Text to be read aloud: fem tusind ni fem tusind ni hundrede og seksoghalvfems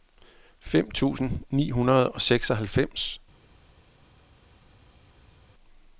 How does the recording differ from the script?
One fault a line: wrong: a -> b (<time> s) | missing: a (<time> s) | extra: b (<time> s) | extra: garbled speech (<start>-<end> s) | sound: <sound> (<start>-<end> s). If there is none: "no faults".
missing: fem tusind ni (1.7 s)